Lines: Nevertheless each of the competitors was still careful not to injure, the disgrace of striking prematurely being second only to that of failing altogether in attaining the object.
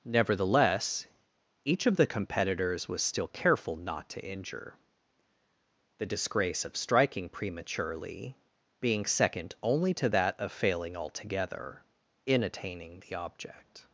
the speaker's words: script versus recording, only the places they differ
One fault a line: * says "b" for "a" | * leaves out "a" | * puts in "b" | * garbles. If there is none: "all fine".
all fine